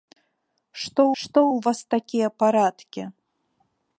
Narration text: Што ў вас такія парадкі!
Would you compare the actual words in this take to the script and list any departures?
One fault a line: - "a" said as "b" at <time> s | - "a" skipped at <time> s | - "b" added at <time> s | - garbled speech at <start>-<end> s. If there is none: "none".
- "што" added at 1.2 s